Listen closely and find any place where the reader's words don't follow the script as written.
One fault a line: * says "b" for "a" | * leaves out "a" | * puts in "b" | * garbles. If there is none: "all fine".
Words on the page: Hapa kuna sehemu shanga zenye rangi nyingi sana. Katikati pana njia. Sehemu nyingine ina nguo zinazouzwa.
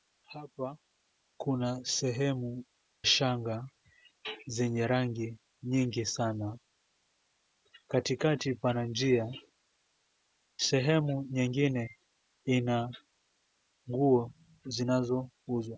all fine